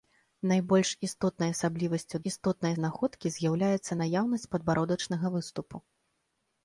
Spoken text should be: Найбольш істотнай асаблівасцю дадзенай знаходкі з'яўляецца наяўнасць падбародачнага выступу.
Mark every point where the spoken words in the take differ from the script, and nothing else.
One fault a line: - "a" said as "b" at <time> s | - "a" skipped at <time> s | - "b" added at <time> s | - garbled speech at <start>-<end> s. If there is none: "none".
- "дадзенай" said as "істотнай" at 2.3 s